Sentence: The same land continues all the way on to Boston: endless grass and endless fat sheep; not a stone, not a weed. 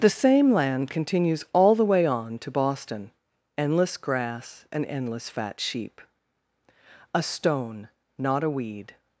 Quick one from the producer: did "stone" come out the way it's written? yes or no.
yes